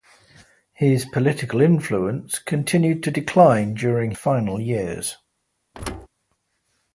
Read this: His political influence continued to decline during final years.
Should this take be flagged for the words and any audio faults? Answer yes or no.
yes